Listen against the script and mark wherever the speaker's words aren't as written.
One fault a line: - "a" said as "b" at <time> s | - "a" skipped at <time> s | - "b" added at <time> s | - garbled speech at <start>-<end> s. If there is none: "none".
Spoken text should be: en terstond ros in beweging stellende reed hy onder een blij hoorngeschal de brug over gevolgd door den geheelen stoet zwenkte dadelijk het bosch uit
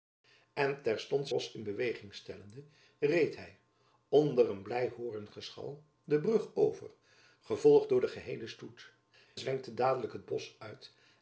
none